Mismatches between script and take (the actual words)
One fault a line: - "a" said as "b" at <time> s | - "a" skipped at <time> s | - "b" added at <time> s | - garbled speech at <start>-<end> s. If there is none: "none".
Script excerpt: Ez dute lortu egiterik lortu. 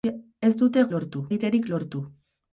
none